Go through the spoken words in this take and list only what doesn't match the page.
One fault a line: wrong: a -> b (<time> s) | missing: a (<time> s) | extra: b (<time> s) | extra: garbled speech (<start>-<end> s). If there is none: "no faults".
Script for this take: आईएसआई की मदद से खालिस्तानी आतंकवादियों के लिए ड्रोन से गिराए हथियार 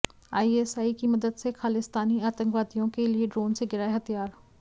no faults